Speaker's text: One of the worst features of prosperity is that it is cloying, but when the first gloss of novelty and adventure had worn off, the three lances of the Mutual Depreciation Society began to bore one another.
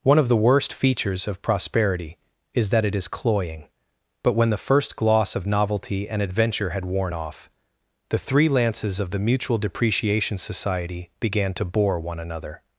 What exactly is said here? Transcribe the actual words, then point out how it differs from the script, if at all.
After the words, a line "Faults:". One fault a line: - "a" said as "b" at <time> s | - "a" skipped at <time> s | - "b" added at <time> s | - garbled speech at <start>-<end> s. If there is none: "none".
One of the worst features of prosperity is that it is cloying, but when the first gloss of novelty and adventure had worn off, the three lances of the Mutual Depreciation Society began to bore one another.
Faults:
none